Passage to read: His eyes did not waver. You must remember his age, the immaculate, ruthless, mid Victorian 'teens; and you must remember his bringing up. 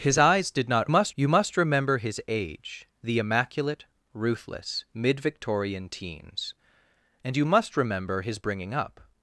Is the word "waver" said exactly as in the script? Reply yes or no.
no